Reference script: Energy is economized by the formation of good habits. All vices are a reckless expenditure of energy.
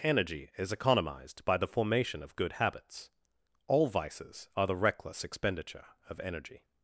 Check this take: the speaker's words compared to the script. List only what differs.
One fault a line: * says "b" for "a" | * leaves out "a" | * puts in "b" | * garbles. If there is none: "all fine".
* says "the" for "a"